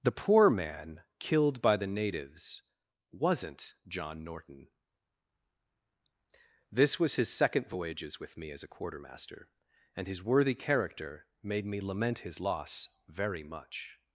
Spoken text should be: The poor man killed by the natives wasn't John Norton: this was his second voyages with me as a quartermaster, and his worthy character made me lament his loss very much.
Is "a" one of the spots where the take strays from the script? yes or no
no